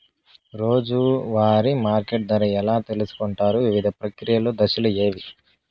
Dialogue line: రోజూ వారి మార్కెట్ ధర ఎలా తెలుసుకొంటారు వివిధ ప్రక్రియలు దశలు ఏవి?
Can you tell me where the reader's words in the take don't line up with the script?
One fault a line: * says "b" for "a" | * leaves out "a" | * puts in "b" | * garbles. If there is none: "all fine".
all fine